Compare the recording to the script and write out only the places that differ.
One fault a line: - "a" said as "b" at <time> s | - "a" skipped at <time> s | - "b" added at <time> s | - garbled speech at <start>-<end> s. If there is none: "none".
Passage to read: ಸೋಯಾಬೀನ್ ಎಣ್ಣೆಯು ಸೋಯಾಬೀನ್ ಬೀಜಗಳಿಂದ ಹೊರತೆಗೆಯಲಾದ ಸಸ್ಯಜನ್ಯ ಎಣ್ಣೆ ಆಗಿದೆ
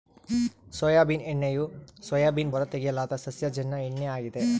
- "ಬೀಜಗಳಿಂದ" skipped at 2.5 s